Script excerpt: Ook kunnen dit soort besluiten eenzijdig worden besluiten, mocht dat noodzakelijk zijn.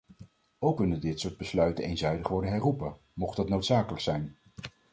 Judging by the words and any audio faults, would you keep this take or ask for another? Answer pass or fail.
fail